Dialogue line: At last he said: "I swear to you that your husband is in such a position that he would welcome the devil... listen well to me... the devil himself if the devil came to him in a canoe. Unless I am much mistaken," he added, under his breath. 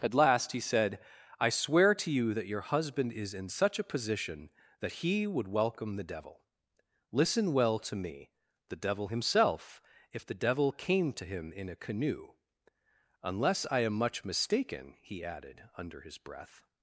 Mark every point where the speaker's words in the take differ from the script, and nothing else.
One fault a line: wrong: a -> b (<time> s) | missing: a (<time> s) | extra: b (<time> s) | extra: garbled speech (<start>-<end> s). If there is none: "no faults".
no faults